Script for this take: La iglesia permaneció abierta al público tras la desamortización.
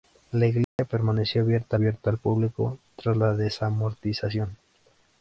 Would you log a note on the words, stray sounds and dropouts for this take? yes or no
yes